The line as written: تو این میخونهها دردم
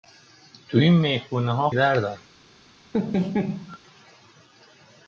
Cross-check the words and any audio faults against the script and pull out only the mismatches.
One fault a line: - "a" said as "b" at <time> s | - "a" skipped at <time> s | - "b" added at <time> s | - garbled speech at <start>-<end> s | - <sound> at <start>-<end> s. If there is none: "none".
- laugh at 2.9-3.8 s